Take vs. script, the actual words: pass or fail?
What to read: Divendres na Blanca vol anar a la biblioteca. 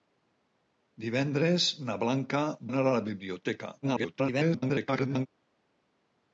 fail